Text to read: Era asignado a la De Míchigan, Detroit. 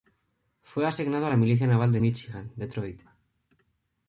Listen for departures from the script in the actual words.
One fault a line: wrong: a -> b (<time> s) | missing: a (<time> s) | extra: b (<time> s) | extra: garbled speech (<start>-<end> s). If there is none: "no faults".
wrong: Era -> Fue (0.6 s)
extra: Milicia Naval (1.3 s)